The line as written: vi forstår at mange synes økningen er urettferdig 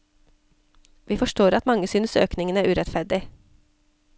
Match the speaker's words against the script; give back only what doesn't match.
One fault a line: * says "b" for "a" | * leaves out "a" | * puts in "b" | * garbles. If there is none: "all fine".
all fine